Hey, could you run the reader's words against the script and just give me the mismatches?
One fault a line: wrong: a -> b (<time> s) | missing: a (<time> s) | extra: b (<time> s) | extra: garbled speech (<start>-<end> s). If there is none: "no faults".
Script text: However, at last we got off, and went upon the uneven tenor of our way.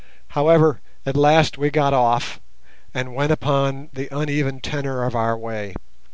no faults